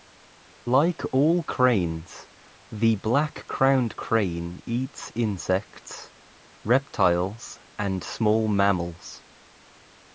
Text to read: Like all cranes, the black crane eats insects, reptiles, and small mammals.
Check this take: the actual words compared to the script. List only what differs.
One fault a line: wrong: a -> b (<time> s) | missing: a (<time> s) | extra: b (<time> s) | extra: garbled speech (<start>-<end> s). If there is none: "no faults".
extra: crowned (3.5 s)